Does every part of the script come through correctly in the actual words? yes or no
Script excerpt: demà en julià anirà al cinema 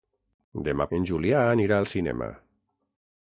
yes